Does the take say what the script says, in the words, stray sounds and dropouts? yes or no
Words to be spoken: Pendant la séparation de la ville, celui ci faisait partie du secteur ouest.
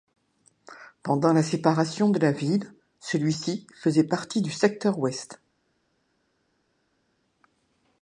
yes